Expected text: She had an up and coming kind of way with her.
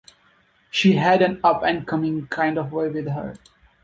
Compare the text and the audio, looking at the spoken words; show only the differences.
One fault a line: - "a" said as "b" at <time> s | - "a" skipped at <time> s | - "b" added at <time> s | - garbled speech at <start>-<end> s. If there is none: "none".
none